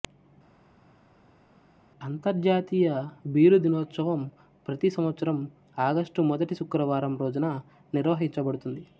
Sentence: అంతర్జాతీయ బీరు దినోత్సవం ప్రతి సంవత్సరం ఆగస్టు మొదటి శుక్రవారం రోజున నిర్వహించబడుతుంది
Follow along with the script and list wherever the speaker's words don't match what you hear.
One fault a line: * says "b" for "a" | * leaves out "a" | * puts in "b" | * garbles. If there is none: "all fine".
all fine